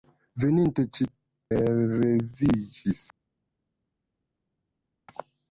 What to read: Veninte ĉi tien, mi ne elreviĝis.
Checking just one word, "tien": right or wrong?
wrong